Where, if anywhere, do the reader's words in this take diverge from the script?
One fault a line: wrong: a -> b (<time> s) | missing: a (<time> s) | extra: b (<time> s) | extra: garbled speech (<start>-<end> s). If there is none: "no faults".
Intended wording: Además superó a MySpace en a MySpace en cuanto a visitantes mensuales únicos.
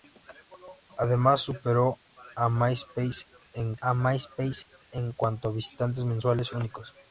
no faults